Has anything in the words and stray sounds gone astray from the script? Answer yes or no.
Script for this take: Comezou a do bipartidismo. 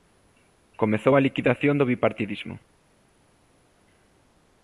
yes